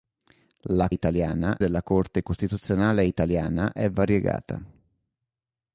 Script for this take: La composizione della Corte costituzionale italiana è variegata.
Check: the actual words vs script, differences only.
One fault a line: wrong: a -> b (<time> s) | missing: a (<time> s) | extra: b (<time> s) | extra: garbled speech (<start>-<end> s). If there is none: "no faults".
wrong: composizione -> italiana (0.9 s)